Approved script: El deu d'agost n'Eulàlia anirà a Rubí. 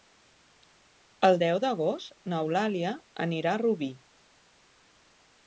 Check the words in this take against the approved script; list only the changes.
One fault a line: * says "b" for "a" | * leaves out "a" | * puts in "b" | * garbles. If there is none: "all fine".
all fine